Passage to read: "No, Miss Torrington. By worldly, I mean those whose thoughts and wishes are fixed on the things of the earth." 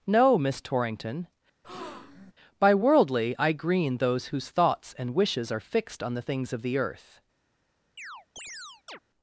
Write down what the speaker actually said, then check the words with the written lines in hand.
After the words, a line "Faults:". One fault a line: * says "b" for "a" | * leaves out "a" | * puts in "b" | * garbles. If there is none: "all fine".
"No, Miss Torrington. By worldly, I green those whose thoughts and wishes are fixed on the things of the earth."
Faults:
* says "green" for "mean"